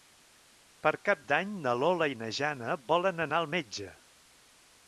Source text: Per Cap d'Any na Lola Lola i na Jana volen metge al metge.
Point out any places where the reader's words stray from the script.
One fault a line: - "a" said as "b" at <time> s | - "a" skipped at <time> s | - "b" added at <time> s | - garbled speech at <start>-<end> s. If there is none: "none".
- "Lola" skipped at 2.1 s
- "metge" said as "anar" at 3.3 s